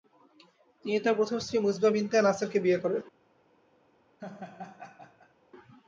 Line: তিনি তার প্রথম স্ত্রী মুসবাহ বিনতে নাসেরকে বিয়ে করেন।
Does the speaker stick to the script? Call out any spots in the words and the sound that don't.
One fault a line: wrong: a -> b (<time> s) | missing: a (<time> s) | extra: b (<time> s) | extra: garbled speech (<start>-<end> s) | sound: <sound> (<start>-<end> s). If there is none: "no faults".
sound: laugh (4.2-5.3 s)